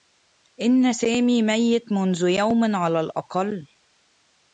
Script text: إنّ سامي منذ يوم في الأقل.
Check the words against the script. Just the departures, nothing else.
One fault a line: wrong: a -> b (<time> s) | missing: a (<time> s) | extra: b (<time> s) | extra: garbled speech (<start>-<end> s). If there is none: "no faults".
extra: ميّت (1.4 s)
wrong: في -> على (2.8 s)